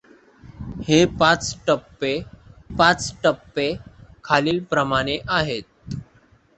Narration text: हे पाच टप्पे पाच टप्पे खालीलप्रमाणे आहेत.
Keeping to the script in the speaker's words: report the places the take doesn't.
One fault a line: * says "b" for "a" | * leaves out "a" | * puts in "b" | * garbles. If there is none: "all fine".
all fine